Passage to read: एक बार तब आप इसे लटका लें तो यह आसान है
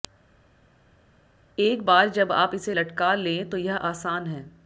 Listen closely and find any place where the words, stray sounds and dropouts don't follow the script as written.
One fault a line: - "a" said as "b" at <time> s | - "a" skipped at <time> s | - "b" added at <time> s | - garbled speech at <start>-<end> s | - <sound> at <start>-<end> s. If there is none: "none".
- "तब" said as "जब" at 2.1 s